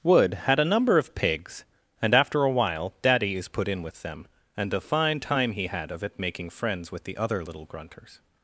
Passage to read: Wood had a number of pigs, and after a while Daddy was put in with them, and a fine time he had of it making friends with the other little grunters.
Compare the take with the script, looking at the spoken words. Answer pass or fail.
fail